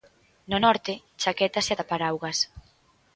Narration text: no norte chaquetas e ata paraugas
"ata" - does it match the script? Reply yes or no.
yes